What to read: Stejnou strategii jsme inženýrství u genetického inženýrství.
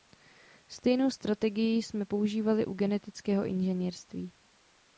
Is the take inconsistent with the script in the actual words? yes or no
yes